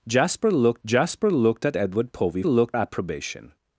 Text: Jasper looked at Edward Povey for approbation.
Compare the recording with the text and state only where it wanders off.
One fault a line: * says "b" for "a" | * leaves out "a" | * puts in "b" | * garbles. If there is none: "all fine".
* puts in "jasper looked"
* says "looked" for "for"